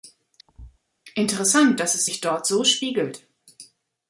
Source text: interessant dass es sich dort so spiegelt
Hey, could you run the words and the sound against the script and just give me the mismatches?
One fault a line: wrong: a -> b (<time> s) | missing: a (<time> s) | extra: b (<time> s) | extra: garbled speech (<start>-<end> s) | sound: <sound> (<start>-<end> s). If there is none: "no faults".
sound: thud (0.5-0.8 s)